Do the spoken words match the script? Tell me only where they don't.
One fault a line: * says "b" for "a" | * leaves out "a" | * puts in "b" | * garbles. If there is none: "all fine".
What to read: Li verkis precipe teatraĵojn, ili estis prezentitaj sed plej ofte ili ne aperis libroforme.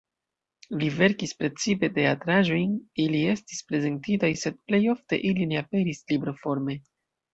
all fine